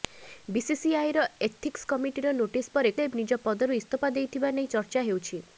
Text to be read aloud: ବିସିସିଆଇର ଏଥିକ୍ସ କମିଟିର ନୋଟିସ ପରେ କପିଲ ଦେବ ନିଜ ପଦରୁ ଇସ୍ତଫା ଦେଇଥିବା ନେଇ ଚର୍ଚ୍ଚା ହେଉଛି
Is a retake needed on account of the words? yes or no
yes